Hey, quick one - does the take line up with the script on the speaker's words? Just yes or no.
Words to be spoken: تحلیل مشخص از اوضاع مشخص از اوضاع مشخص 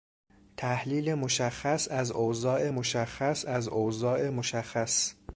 yes